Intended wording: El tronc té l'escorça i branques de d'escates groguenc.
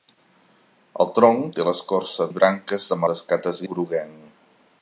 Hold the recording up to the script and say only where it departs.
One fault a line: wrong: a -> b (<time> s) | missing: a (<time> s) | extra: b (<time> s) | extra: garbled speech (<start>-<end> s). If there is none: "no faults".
no faults